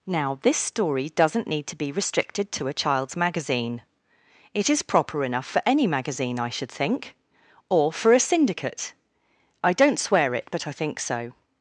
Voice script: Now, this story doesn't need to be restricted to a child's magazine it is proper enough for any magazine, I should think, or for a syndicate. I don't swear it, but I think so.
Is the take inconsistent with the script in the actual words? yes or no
no